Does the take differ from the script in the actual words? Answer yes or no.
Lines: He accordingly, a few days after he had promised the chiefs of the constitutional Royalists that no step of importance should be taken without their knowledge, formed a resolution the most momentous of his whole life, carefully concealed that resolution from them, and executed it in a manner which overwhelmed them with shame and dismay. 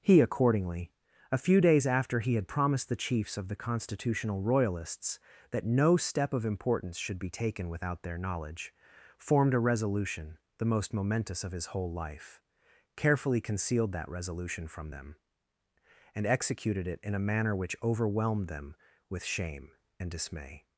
no